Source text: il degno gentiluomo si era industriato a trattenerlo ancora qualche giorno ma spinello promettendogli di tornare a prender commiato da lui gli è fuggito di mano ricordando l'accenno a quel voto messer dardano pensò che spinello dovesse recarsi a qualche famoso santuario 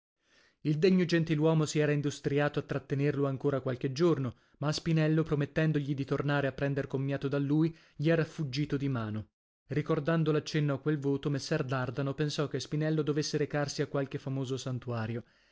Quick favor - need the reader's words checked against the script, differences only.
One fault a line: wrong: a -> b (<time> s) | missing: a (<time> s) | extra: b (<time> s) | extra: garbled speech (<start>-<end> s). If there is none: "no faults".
wrong: è -> era (8.1 s)